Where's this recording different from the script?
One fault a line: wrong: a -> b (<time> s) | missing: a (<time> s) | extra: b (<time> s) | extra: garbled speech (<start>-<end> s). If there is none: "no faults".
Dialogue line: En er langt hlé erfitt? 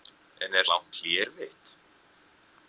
no faults